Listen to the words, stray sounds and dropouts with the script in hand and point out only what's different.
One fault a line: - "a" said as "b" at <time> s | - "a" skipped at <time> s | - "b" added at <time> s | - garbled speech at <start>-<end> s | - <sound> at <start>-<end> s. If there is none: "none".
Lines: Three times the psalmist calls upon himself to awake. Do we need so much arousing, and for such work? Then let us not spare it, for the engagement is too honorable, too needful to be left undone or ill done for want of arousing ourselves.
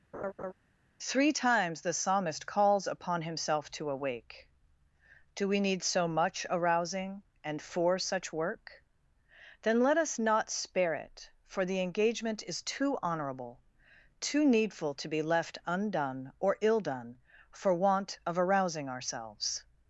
- laugh at 0.1-0.5 s